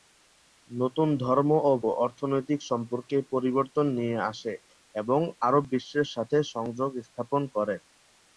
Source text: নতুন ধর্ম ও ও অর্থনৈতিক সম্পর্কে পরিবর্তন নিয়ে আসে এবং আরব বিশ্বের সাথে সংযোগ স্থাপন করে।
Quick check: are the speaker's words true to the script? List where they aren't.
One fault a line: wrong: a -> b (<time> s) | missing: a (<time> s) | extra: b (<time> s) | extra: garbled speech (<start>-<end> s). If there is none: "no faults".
no faults